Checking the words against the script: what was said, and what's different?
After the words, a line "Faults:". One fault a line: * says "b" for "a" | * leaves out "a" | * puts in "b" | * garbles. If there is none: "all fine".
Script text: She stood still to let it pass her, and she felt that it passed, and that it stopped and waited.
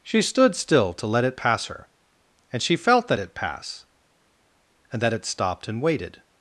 She stood still to let it pass her, and she felt that it pass, and that it stopped and waited.
Faults:
* says "pass" for "passed"